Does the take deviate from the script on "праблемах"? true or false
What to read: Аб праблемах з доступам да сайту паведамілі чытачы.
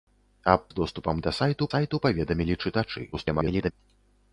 true